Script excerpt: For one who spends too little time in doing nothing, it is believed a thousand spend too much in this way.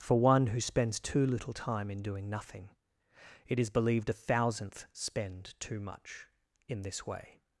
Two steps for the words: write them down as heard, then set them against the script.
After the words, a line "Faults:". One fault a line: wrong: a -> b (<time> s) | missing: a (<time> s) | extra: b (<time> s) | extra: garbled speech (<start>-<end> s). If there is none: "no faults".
For one who spends too little time in doing nothing, it is believed a thousandth spend too much in this way.
Faults:
wrong: thousand -> thousandth (4.1 s)